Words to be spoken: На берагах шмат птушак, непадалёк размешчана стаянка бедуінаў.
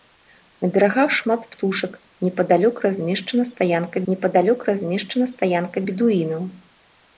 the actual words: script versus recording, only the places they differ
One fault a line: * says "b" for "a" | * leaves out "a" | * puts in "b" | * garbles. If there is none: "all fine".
* puts in "непадалёк размешчана стаянка"